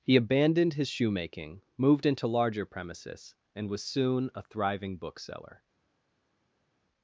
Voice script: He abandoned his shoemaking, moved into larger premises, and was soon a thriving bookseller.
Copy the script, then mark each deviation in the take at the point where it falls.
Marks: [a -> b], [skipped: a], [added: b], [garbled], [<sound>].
He abandoned his shoemaking, moved into larger premises, and was soon a thriving bookseller.